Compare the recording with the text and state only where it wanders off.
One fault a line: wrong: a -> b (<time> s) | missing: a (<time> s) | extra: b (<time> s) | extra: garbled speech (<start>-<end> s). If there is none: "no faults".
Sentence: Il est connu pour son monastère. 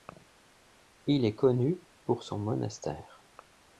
no faults